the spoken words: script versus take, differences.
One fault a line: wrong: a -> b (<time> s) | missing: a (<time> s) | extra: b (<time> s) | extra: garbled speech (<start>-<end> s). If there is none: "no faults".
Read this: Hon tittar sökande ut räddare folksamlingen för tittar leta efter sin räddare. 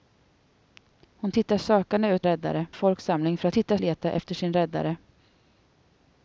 no faults